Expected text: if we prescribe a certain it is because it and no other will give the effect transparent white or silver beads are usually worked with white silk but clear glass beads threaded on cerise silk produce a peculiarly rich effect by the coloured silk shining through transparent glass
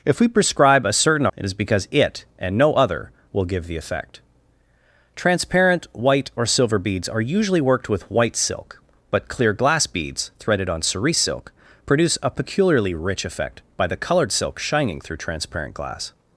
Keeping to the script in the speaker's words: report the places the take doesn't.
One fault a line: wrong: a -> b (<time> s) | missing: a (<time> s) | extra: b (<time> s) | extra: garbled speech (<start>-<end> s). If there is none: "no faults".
no faults